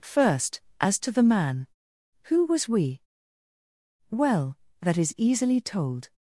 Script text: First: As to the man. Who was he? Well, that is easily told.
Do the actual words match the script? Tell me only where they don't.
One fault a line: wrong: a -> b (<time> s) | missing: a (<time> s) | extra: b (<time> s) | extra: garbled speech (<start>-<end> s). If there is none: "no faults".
wrong: he -> we (2.7 s)